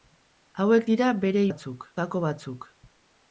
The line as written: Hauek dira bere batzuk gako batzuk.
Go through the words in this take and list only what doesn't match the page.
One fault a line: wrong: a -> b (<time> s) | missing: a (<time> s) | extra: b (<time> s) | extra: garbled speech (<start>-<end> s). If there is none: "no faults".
no faults